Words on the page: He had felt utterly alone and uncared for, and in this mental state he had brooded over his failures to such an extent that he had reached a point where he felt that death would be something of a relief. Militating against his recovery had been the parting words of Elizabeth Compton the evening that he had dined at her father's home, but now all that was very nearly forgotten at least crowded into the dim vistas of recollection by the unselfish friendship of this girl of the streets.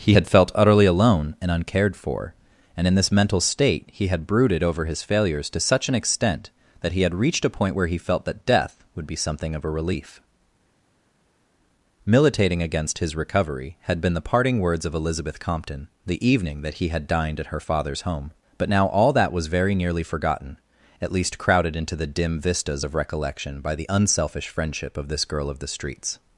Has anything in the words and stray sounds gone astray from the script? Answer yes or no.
no